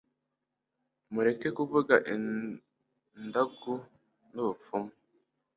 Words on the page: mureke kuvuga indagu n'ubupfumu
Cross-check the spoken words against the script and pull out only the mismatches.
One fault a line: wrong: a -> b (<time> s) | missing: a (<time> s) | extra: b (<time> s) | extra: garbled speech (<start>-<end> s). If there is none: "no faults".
no faults